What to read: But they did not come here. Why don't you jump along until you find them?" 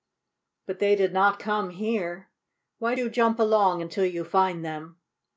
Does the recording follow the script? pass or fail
fail